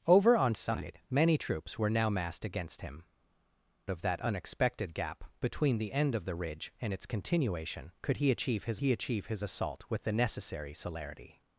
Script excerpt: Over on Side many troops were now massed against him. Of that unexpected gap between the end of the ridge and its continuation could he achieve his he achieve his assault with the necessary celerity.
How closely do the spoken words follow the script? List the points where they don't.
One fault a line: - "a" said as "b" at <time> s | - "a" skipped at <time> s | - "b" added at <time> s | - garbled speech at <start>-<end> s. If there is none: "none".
none